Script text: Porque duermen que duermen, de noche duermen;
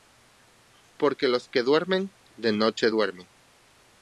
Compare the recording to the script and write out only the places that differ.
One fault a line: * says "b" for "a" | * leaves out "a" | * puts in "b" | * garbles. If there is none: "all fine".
* says "los" for "duermen"